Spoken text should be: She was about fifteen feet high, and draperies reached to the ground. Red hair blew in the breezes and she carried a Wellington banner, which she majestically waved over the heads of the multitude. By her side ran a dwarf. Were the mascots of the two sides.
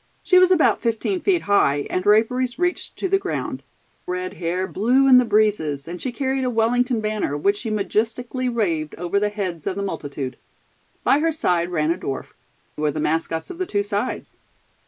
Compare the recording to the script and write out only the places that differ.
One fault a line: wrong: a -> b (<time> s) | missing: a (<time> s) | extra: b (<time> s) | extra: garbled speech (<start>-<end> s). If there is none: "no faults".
no faults